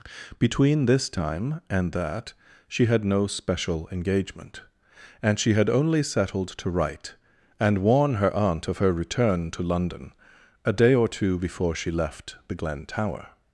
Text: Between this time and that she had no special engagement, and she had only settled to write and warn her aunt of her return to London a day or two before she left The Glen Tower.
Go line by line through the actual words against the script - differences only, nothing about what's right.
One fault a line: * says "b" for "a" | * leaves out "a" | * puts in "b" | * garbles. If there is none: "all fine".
all fine